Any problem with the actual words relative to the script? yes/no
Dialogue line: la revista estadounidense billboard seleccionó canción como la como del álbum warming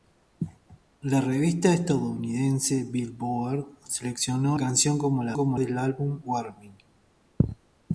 no